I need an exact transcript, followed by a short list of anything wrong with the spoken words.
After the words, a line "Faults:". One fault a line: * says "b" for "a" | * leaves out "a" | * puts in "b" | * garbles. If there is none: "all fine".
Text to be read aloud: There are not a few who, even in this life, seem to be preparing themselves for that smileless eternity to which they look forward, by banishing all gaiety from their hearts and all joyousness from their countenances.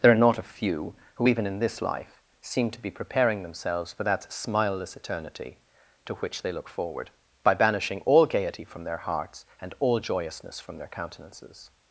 There are not a few who, even in this life, seem to be preparing themselves for that smileless eternity to which they look forward, by banishing all gaiety from their hearts and all joyousness from their countenances.
Faults:
all fine